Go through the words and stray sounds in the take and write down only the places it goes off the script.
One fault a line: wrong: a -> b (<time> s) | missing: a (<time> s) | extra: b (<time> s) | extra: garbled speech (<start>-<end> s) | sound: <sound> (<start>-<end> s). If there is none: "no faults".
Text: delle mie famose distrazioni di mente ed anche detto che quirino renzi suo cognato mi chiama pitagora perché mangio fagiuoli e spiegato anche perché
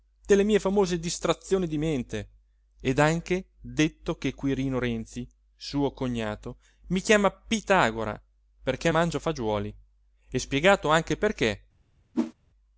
sound: whoosh (12.1-12.3 s)